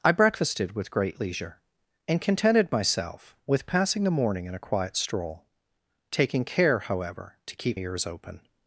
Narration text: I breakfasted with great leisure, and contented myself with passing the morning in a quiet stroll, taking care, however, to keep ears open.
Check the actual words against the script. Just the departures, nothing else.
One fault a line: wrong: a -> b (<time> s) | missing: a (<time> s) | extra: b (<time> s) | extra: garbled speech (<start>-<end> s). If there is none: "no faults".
no faults